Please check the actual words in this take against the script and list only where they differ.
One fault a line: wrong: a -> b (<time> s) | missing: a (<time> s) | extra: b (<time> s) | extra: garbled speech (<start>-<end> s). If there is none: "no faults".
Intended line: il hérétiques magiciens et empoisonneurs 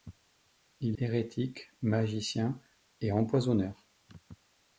no faults